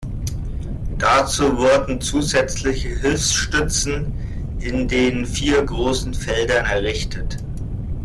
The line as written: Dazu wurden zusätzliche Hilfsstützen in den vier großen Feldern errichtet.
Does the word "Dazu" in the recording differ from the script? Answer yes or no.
no